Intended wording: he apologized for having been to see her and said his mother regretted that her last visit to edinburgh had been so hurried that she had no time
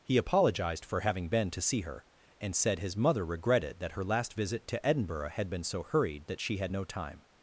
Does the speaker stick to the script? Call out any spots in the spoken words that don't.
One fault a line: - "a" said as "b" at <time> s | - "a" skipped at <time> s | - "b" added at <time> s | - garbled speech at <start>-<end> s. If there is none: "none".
none